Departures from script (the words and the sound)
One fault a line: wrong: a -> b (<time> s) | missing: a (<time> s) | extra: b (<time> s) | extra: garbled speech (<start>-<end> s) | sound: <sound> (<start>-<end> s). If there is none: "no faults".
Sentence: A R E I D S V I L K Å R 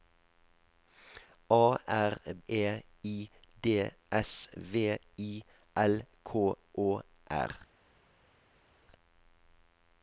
no faults